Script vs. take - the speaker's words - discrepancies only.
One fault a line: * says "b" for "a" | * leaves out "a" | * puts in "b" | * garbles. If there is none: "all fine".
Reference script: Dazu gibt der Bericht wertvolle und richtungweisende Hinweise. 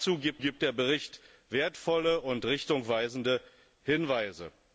* puts in "gibt"